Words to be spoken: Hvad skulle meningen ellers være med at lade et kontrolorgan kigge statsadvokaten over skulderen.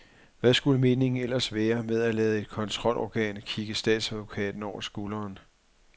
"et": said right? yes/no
yes